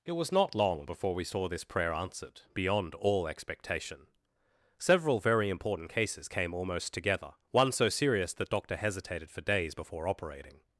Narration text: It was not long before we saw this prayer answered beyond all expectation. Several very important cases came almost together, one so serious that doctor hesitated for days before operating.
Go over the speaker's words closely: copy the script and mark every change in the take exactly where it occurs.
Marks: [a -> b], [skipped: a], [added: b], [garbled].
It was not long before we saw this prayer answered beyond all expectation. Several very important cases came almost together, one so serious that doctor hesitated for days before operating.